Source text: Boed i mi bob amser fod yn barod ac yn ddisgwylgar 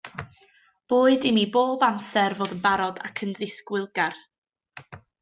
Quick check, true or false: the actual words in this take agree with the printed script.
true